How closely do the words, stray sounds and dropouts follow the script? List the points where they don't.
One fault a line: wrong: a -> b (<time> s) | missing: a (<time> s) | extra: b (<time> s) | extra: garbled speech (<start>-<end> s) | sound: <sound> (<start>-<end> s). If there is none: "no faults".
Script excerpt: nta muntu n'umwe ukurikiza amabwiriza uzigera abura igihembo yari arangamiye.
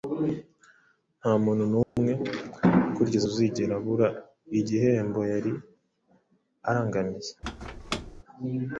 sound: dropout (1.8-2.0 s)
missing: amabwiriza (3.2 s)
sound: squeak (7.4-8.2 s)